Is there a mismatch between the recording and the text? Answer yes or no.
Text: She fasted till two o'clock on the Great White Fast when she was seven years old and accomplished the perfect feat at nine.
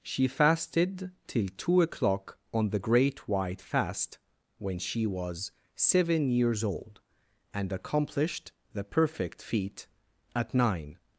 no